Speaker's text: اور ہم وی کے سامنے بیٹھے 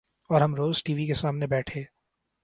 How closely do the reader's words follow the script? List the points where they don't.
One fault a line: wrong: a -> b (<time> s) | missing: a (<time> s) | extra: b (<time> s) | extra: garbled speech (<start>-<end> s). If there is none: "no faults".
extra: روز ٹی (0.6 s)